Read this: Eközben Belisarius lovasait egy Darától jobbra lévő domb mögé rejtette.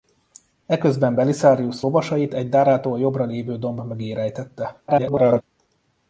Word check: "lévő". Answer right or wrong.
right